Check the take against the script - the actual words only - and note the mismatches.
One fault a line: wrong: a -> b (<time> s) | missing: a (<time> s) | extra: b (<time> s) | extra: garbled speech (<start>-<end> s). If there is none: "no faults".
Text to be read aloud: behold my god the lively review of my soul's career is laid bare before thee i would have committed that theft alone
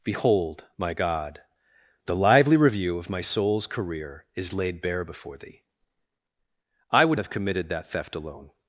no faults